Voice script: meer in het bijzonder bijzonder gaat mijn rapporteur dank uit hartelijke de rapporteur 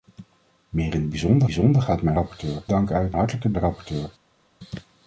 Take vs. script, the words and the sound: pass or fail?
pass